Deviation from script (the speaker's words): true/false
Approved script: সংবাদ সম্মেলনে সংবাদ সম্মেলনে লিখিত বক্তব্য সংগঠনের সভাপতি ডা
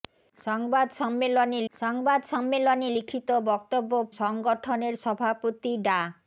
false